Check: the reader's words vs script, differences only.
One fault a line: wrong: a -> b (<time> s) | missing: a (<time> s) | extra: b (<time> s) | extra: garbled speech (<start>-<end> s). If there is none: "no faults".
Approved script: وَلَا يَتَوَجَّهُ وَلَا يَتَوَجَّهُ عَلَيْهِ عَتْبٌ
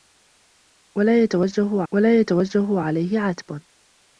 no faults